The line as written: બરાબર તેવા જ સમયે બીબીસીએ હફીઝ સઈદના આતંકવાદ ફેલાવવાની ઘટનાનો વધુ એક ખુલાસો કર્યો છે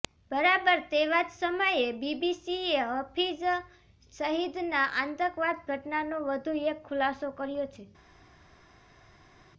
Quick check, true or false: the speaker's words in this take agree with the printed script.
false